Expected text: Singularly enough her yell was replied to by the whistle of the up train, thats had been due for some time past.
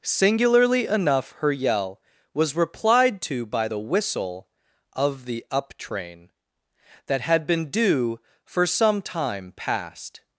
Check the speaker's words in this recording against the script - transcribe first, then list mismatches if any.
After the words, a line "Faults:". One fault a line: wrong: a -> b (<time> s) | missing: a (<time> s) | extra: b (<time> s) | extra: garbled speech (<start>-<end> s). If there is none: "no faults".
Singularly enough her yell was replied to by the whistle of the up train, that had been due for some time past.
Faults:
wrong: thats -> that (7.1 s)